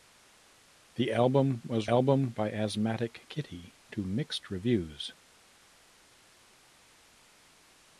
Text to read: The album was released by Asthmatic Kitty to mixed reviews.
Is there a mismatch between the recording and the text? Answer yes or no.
yes